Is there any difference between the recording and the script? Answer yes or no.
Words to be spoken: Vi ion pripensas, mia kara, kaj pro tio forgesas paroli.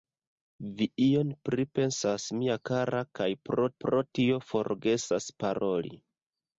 yes